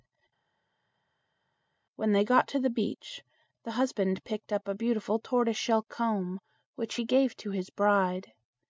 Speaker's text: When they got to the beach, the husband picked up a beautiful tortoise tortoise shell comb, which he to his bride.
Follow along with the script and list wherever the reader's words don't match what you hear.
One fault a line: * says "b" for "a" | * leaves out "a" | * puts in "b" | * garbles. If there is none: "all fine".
* leaves out "tortoise"
* puts in "gave"